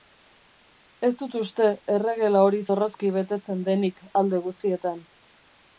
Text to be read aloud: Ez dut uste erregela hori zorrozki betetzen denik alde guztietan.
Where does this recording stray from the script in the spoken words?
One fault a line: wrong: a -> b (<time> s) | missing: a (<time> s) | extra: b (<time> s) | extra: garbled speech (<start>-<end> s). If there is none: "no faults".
no faults